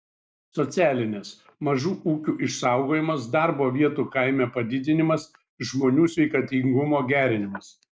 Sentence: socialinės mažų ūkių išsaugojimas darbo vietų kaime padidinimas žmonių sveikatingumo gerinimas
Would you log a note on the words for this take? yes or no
no